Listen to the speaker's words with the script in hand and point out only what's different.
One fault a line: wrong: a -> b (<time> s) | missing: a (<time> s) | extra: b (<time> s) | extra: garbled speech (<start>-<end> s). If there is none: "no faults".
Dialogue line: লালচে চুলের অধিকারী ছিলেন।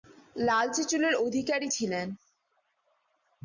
no faults